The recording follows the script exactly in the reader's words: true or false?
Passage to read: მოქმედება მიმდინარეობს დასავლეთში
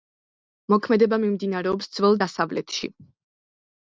false